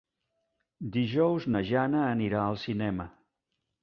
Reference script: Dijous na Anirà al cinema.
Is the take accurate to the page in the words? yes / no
no